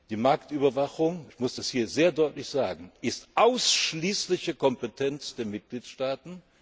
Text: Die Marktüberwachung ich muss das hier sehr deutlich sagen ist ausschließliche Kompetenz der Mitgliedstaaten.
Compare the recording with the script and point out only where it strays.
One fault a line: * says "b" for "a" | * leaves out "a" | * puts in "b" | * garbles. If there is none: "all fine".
all fine